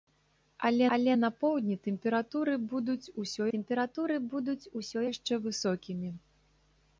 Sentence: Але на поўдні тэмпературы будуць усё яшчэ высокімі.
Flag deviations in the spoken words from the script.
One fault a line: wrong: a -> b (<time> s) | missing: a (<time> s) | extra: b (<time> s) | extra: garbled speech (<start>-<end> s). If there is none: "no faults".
extra: але (1.0 s)
extra: тэмпературы будуць усё (3.5 s)